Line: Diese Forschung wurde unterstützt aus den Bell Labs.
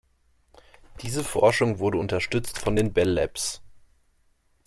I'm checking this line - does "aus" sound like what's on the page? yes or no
no